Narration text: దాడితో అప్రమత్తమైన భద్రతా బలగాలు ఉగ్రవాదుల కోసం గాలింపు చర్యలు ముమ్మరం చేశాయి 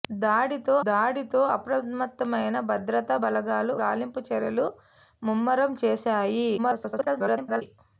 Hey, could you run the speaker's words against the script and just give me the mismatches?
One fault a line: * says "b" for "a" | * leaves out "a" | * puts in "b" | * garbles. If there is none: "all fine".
* puts in "దాడితో"
* leaves out "ఉగ్రవాదుల కోసం"
* garbles